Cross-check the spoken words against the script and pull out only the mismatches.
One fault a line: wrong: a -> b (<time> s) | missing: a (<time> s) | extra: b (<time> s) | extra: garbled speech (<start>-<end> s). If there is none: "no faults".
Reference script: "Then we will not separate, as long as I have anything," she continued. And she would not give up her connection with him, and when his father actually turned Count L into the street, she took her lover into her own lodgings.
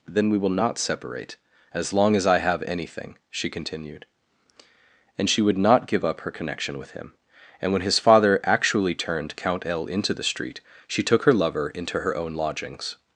no faults